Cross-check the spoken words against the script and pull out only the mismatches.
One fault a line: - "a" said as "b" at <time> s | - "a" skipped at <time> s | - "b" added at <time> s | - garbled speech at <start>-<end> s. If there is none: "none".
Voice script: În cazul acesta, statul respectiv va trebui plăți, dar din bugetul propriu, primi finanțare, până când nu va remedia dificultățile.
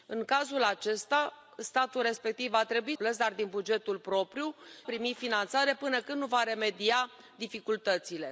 none